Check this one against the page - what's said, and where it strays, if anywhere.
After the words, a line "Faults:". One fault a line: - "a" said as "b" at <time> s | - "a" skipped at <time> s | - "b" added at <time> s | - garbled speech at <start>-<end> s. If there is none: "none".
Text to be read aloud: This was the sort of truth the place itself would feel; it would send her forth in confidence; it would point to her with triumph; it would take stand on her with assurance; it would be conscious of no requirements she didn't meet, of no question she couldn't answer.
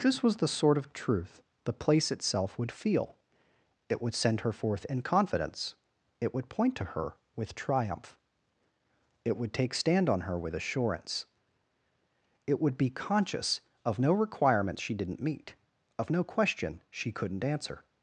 This was the sort of truth the place itself would feel; it would send her forth in confidence; it would point to her with triumph; it would take stand on her with assurance; it would be conscious of no requirements she didn't meet, of no question she couldn't answer.
Faults:
none